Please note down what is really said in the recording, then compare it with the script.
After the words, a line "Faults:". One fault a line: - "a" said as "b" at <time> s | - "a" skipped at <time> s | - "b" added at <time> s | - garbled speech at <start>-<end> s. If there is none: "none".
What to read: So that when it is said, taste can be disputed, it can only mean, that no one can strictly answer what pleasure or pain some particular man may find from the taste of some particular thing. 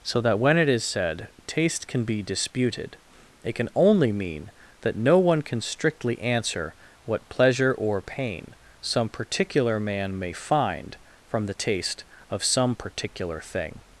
So that when it is said, taste can be disputed, it can only mean, that no one can strictly answer what pleasure or pain some particular man may find from the taste of some particular thing.
Faults:
none